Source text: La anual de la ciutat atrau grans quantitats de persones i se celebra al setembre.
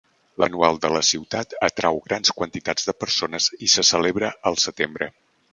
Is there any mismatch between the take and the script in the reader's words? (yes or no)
no